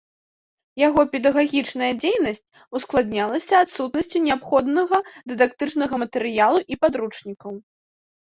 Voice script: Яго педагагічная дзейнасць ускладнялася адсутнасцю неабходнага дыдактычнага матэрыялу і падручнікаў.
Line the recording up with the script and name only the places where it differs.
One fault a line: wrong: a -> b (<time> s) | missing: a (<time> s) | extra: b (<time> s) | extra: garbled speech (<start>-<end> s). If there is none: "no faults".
no faults